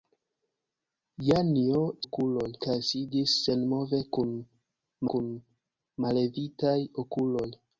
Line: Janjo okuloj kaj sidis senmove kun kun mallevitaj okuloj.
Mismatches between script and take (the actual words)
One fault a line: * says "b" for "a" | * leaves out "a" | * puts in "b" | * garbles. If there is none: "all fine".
all fine